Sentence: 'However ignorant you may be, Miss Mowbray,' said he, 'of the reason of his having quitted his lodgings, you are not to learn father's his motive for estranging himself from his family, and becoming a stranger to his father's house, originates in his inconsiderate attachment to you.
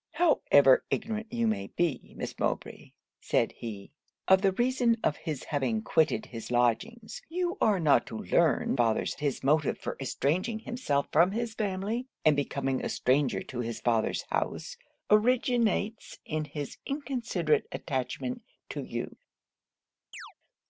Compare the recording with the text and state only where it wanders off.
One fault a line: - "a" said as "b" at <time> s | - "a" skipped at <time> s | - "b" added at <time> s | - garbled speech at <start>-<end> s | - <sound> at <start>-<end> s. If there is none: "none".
- chirp at 20.1-20.3 s